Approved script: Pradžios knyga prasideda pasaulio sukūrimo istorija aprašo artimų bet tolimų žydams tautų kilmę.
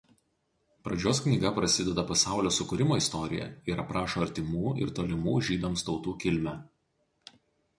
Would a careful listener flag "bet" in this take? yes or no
yes